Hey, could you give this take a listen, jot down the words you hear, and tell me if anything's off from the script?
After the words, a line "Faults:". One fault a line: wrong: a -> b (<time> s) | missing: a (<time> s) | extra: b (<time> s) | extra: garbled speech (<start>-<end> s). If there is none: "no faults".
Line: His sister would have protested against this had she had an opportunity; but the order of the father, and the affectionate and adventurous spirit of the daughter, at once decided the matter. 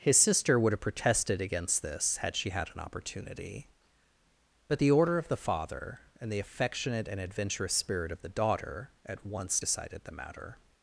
His sister would have protested against this had she had an opportunity; but the order of the father, and the affectionate and adventurous spirit of the daughter, at once decided the matter.
Faults:
no faults